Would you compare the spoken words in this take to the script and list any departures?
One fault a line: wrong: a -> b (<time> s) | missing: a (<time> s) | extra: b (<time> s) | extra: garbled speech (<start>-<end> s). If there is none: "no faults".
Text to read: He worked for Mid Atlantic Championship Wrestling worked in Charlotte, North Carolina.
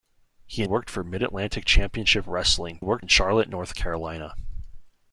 no faults